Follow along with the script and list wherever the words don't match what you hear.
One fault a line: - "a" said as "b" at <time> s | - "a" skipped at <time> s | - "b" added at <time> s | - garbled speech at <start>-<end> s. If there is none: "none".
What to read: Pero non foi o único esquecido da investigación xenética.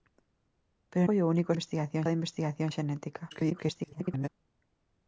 - "non" skipped at 1.1 s
- "esquecido" said as "investigación" at 1.5 s
- garbled speech at 3.3-4.3 s